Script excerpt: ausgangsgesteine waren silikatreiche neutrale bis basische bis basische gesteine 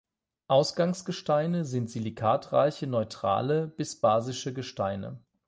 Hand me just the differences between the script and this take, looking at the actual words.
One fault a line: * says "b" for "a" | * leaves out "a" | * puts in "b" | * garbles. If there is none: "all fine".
* says "sind" for "waren"
* leaves out "bis basische"